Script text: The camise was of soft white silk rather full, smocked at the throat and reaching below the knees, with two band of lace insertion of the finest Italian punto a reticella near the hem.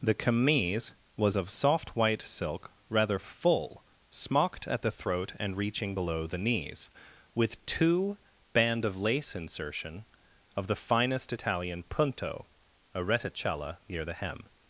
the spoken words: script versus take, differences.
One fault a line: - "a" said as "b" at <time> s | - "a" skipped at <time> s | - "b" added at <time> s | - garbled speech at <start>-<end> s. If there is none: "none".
none